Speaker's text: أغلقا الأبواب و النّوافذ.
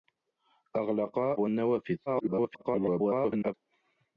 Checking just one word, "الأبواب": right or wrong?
wrong